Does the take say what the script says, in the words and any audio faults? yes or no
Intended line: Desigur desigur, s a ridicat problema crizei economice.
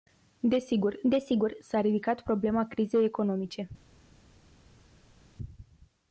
yes